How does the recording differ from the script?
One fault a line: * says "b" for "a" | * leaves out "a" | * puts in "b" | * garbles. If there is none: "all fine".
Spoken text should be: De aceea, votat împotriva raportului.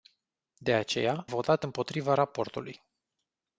all fine